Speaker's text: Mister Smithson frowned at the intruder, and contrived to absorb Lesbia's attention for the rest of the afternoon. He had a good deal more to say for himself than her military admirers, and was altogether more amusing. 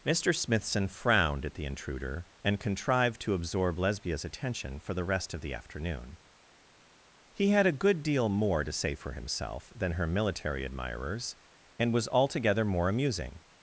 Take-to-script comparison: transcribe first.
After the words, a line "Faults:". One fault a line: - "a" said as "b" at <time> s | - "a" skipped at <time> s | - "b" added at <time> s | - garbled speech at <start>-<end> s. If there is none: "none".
Mister Smithson frowned at the intruder, and contrived to absorb Lesbia's attention for the rest of the afternoon. He had a good deal more to say for himself than her military admirers, and was altogether more amusing.
Faults:
none